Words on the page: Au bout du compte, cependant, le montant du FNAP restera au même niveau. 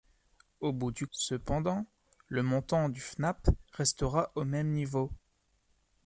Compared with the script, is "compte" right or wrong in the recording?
wrong